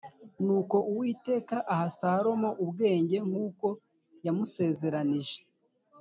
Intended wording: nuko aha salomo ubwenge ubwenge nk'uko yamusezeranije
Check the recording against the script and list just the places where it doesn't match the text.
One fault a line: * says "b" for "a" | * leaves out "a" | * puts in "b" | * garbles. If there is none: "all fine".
* puts in "uwiteka"
* leaves out "ubwenge"